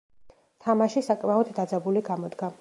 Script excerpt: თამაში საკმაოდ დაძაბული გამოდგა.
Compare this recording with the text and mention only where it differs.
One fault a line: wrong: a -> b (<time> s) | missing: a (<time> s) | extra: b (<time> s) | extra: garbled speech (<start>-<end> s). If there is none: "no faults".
no faults